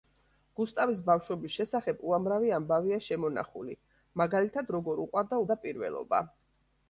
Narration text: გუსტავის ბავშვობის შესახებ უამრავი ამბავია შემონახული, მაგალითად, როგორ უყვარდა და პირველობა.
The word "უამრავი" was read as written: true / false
true